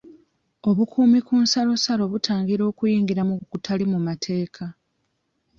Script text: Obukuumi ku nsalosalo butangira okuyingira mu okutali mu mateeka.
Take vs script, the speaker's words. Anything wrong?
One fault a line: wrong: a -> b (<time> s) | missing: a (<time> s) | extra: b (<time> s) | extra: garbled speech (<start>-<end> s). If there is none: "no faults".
no faults